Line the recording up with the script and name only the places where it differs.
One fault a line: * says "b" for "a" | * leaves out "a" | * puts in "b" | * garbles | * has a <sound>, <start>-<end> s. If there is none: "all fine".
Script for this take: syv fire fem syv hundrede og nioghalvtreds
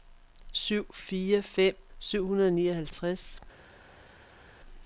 all fine